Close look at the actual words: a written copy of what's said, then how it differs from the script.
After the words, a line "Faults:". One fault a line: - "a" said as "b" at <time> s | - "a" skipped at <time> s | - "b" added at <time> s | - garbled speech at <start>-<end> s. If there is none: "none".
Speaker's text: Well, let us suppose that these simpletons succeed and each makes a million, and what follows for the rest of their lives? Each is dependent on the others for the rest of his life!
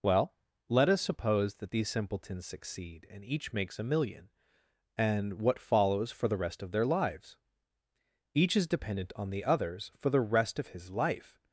Well, let us suppose that these simpletons succeed and each makes a million, and what follows for the rest of their lives? Each is dependent on the others for the rest of his life!
Faults:
none